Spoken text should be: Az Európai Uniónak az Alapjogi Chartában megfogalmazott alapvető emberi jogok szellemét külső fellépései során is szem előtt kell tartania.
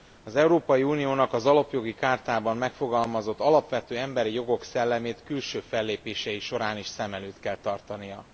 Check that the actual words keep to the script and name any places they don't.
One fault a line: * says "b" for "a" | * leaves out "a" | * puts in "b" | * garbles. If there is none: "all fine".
all fine